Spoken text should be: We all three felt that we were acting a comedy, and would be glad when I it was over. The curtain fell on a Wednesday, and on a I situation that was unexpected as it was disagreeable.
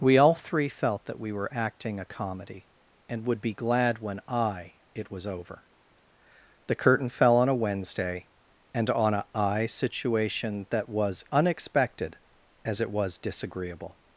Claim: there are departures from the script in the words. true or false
false